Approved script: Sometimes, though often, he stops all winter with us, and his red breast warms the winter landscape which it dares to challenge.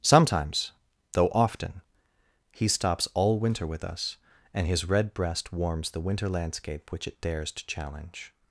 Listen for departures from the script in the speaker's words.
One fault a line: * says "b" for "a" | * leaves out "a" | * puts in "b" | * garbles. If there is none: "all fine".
all fine